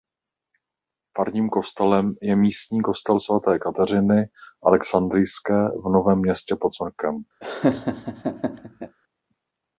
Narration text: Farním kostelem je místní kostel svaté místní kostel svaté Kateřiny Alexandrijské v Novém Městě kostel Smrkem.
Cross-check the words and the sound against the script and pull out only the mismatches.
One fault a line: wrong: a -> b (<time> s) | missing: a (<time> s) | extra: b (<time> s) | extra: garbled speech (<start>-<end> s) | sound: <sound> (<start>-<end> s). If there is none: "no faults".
missing: místní kostel svaté (3.6 s)
wrong: kostel -> pod (6.6 s)
sound: laugh (7.4-9.0 s)